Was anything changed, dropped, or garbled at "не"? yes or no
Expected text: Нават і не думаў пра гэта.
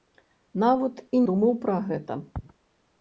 yes